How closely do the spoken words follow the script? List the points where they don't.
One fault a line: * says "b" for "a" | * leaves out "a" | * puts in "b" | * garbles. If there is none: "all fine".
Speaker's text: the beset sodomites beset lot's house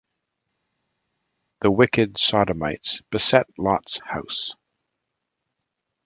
* says "wicked" for "beset"